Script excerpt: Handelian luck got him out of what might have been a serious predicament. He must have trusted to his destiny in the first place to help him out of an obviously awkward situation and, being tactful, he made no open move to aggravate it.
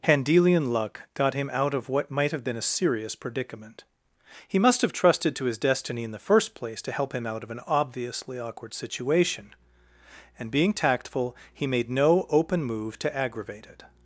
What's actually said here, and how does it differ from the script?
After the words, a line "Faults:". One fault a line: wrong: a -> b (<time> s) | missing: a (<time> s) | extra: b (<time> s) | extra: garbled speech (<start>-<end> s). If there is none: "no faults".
Handelian luck got him out of what might have been a serious predicament. He must have trusted to his destiny in the first place to help him out of an obviously awkward situation and, being tactful, he made no open move to aggravate it.
Faults:
no faults